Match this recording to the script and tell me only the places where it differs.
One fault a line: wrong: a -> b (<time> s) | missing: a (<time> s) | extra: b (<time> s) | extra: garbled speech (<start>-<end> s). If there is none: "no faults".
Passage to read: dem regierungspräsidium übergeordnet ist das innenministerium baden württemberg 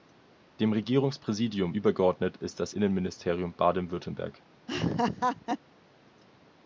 no faults